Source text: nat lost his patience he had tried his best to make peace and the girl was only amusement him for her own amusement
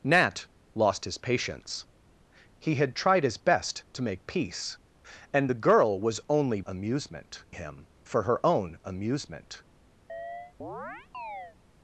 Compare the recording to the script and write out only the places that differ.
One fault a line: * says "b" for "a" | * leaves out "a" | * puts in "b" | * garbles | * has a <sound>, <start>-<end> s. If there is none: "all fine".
* has a chirp, 10.1-11.6 s